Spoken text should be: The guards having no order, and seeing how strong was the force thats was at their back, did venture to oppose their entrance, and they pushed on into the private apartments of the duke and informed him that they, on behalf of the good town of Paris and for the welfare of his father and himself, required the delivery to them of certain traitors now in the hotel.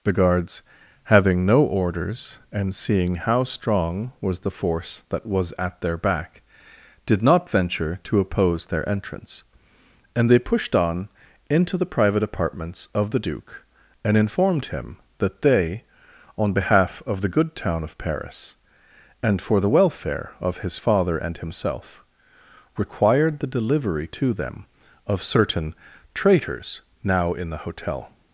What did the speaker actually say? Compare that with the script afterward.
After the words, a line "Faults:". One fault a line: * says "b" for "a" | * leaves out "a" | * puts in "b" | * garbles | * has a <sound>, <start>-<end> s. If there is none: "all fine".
The guards having no orders, and seeing how strong was the force that was at their back, did not venture to oppose their entrance, and they pushed on into the private apartments of the duke and informed him that they, on behalf of the good town of Paris and for the welfare of his father and himself, required the delivery to them of certain traitors now in the hotel.
Faults:
* says "orders" for "order"
* says "that" for "thats"
* puts in "not"